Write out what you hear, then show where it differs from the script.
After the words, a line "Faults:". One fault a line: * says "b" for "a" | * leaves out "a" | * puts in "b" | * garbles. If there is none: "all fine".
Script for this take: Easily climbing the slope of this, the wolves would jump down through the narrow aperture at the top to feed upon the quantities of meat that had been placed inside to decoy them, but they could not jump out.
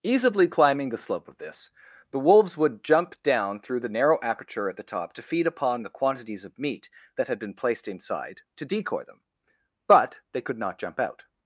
Easily climbing the slope of this, the wolves would jump down through the narrow aperture at the top to feed upon the quantities of meat that had been placed inside to decoy them, but they could not jump out.
Faults:
all fine